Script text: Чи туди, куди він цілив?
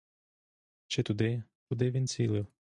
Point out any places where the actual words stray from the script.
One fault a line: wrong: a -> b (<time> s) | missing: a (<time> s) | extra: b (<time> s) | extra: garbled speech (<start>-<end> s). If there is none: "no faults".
no faults